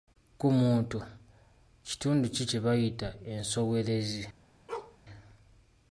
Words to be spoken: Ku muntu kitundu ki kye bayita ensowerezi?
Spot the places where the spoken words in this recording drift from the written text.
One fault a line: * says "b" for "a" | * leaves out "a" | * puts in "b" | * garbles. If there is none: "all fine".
all fine